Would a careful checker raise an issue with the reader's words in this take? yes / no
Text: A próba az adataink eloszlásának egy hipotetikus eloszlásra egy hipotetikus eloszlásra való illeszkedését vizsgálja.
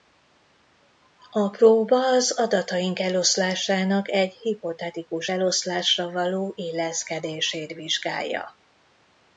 yes